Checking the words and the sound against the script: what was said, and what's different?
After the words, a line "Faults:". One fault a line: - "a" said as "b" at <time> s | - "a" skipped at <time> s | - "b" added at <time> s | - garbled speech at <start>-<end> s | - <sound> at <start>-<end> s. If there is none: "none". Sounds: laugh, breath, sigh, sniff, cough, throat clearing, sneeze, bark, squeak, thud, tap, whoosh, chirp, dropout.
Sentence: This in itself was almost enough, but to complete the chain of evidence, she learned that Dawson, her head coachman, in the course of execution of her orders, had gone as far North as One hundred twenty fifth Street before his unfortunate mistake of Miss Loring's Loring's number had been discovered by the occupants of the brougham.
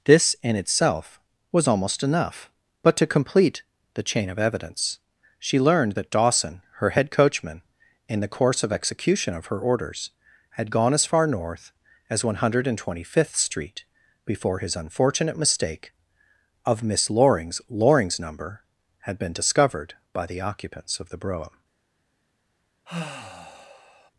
This in itself was almost enough, but to complete the chain of evidence, she learned that Dawson, her head coachman, in the course of execution of her orders, had gone as far North as One hundred twenty fifth Street before his unfortunate mistake of Miss Loring's Loring's number had been discovered by the occupants of the brougham.
Faults:
- sigh at 22.9-24.1 s